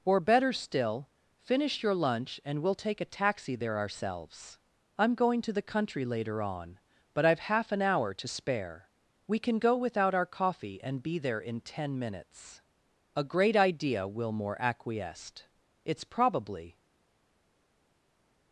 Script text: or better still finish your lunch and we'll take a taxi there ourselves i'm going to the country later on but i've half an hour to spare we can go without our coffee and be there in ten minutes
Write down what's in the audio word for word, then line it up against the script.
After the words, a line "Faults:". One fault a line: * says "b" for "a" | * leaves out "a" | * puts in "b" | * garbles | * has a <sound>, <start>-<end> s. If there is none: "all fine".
or better still finish your lunch and we'll take a taxi there ourselves i'm going to the country later on but i've half an hour to spare we can go without our coffee and be there in ten minutes a great idea wilmore acquiesced it's probably
Faults:
* puts in "a great idea wilmore acquiesced it's probably"